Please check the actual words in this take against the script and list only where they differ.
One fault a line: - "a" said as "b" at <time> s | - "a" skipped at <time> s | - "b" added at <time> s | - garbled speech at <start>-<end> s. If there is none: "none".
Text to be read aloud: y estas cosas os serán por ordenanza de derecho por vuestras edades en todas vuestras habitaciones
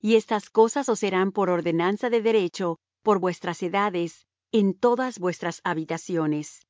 none